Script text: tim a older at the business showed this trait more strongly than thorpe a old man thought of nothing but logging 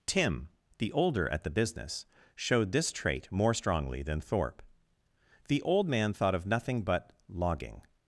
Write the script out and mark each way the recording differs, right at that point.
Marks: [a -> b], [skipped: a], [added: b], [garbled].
tim [a -> the] older at the business showed this trait more strongly than thorpe [a -> the] old man thought of nothing but logging